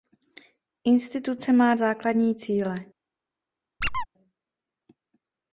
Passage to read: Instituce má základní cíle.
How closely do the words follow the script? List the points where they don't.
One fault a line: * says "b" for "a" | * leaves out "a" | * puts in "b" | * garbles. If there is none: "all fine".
all fine